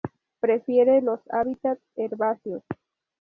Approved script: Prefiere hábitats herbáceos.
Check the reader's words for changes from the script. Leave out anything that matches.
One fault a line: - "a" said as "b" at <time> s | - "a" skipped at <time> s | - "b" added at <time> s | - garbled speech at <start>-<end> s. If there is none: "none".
- "los" added at 1.0 s